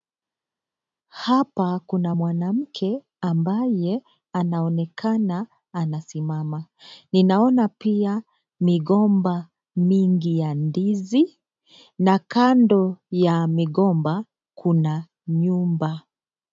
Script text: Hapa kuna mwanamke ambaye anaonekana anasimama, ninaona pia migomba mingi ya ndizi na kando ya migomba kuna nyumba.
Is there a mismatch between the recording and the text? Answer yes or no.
no